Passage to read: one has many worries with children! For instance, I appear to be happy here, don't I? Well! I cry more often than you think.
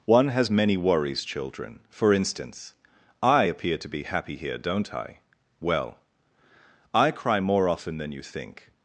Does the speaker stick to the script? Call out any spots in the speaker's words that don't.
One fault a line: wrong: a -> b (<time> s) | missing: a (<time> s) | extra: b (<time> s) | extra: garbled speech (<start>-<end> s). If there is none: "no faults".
missing: with (1.2 s)